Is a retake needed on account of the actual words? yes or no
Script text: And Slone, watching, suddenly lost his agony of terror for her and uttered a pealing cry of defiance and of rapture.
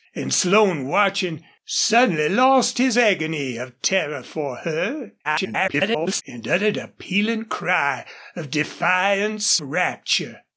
yes